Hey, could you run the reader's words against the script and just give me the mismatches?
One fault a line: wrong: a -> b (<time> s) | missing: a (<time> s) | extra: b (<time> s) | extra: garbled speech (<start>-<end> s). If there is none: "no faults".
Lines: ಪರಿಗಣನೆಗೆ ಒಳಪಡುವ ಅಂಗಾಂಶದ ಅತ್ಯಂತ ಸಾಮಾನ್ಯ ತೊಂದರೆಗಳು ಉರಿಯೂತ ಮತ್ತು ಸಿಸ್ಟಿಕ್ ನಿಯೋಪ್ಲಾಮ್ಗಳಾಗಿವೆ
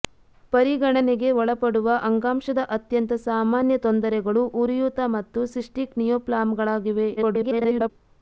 extra: garbled speech (7.2-7.9 s)